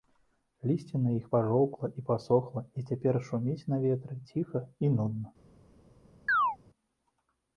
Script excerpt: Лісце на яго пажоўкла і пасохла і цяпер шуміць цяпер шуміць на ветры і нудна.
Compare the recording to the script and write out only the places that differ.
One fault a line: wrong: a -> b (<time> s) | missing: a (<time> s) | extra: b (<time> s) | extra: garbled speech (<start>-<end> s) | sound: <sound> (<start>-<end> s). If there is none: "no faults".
wrong: яго -> іх (1.2 s)
missing: цяпер шуміць (3.7 s)
extra: ціха (4.3 s)
sound: chirp (6.3-6.6 s)